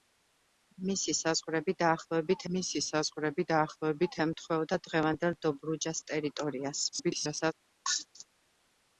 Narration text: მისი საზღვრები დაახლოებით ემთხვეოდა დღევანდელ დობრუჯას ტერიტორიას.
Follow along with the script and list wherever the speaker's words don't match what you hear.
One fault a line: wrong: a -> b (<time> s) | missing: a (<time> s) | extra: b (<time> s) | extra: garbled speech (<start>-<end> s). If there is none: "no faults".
extra: მისი საზღვრები დაახლოებით (2.6 s)
extra: garbled speech (6.9-7.5 s)